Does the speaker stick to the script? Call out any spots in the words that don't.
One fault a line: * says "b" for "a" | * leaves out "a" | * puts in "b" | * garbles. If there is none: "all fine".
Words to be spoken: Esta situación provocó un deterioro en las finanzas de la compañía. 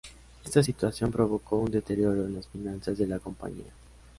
all fine